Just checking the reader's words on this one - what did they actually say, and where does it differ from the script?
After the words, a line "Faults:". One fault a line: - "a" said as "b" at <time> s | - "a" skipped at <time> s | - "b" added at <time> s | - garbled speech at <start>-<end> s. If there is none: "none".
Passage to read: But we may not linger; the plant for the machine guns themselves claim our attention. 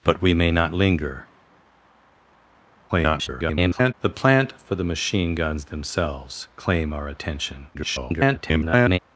But we may not linger; [garbled] the plant for the machine guns themselves claim our attention. [garbled]
Faults:
- garbled speech at 2.9-3.9 s
- garbled speech at 7.7-9.0 s